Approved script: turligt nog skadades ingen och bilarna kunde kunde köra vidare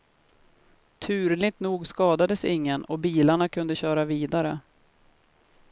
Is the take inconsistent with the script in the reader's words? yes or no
yes